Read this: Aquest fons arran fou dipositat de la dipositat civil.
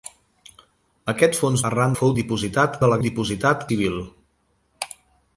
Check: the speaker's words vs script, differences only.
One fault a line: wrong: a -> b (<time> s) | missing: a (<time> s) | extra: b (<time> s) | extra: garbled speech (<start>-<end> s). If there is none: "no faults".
no faults